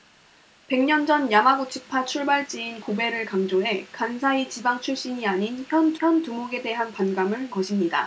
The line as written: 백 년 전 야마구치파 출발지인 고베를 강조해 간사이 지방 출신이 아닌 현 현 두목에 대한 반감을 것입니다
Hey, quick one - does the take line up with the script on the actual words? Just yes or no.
yes